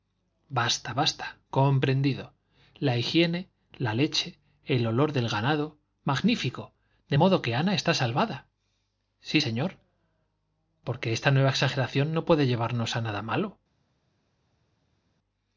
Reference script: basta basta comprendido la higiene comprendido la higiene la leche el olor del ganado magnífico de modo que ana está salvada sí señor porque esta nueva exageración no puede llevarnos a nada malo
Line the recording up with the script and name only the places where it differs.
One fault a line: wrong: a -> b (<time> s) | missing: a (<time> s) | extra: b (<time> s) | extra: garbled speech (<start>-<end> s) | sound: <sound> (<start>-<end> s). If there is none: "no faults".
missing: comprendido la higiene (3.5 s)